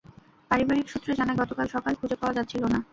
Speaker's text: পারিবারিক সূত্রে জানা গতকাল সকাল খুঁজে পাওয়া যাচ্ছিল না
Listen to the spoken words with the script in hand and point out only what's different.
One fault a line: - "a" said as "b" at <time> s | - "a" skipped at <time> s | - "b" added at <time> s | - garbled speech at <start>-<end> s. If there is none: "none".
none